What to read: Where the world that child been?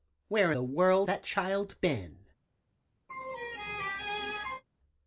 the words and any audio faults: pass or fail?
fail